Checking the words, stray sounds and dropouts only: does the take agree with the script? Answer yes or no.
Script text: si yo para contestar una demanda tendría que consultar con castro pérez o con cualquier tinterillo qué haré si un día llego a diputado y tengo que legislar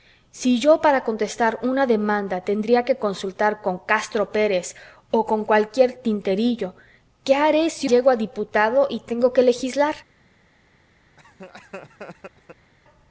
no